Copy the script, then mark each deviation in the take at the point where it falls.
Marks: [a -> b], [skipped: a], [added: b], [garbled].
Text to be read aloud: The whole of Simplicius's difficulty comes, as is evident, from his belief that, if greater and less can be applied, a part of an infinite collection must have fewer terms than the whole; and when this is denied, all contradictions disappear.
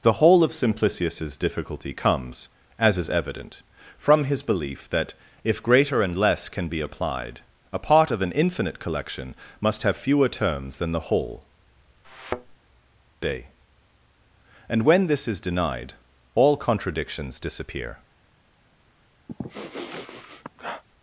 The whole of Simplicius's difficulty comes, as is evident, from his belief that, if greater and less can be applied, a part of an infinite collection must have fewer terms than the whole; [added: day] and when this is denied, all contradictions disappear.